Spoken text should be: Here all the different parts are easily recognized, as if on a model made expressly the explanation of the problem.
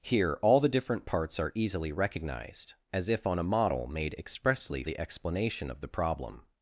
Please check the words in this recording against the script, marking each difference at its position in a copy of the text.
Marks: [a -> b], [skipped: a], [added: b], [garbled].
Here all the different parts are easily recognized, as if on a model made expressly the explanation of the problem.